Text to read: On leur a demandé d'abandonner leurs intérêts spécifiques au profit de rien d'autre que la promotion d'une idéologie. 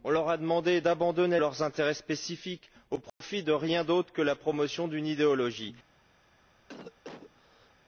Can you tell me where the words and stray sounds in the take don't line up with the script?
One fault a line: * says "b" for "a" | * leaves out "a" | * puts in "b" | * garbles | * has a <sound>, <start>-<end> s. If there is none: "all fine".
* has a dropout, 3.1-3.2 s
* has a cough, 6.7-7.7 s